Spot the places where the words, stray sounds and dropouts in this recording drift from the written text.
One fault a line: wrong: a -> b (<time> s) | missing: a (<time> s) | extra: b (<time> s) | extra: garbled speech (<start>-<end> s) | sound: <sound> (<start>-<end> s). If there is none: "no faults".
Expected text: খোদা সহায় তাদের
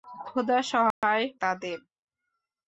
sound: dropout (0.9-1.0 s)